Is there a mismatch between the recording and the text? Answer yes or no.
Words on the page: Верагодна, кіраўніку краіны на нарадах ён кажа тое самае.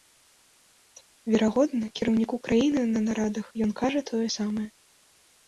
no